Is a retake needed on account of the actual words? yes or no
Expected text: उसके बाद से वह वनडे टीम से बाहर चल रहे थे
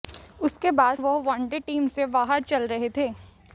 yes